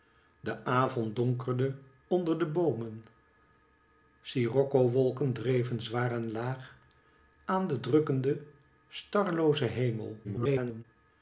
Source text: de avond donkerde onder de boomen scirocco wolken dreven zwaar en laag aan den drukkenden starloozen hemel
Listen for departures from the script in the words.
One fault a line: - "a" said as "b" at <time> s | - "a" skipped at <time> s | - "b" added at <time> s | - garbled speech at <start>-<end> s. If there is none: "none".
- garbled speech at 10.2-10.8 s